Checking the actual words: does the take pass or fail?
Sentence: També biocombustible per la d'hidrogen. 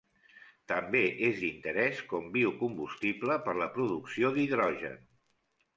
fail